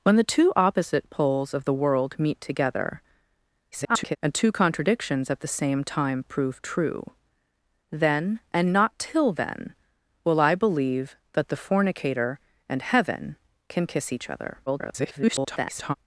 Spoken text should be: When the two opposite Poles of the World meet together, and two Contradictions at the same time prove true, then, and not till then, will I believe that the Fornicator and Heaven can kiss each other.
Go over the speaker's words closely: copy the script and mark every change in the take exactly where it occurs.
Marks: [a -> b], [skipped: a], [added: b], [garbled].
When the two opposite Poles of the World meet together, [garbled] and two Contradictions at the same time prove true, then, and not till then, will I believe that the Fornicator and Heaven can kiss each other. [garbled]